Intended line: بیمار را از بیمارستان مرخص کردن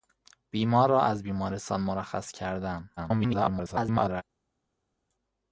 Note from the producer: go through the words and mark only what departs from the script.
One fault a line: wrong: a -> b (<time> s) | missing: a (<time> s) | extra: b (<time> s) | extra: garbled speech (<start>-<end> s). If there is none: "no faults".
extra: garbled speech (3.0-4.2 s)